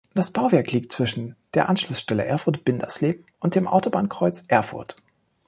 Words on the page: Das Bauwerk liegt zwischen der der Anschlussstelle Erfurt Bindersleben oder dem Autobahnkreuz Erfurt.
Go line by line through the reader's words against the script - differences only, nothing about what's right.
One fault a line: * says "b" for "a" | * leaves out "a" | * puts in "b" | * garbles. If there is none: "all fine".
* leaves out "der"
* says "und" for "oder"